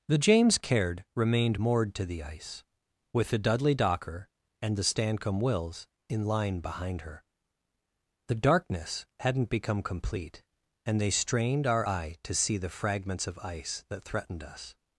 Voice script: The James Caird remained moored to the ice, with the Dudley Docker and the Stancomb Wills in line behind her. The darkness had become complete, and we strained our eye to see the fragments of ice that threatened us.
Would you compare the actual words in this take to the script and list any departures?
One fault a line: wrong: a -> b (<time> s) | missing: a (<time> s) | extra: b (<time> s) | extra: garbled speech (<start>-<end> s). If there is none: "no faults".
wrong: had -> hadn't (9.2 s)
wrong: we -> they (11.0 s)